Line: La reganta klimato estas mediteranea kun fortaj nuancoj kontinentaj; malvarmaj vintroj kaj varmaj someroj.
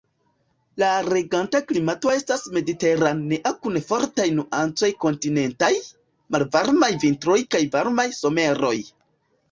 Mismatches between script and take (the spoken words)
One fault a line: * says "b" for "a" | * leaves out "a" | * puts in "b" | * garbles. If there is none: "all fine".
all fine